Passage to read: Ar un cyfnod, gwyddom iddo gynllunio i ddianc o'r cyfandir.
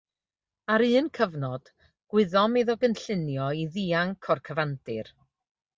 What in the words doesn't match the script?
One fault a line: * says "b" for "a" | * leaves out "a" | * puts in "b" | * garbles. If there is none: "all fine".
all fine